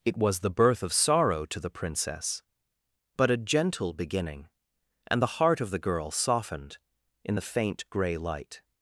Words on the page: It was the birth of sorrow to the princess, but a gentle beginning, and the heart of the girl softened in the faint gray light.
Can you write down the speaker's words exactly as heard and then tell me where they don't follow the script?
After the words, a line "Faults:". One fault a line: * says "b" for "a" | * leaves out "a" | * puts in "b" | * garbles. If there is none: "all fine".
It was the birth of sorrow to the princess, but a gentle beginning, and the heart of the girl softened in the faint gray light.
Faults:
all fine